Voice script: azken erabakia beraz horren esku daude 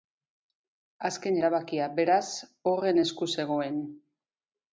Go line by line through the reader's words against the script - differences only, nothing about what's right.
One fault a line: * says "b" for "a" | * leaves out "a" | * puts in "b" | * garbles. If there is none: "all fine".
* says "zegoen" for "daude"